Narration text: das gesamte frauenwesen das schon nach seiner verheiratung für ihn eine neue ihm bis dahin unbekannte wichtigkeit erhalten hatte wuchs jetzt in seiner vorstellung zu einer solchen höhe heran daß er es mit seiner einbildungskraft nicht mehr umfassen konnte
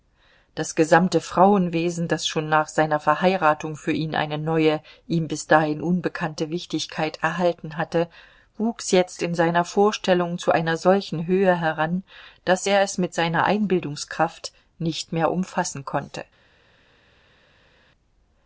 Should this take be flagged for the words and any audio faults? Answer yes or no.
no